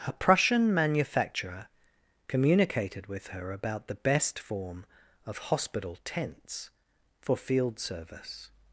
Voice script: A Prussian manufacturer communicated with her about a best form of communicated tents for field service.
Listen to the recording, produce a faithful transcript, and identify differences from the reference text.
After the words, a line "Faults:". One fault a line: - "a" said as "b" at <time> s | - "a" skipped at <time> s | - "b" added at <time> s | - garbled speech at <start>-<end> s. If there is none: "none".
A Prussian manufacturer communicated with her about the best form of hospital tents for field service.
Faults:
- "a" said as "the" at 3.9 s
- "communicated" said as "hospital" at 5.5 s